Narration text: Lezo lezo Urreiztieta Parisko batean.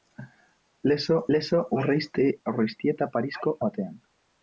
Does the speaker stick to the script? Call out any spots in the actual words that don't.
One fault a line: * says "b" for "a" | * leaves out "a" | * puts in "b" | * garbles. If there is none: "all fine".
all fine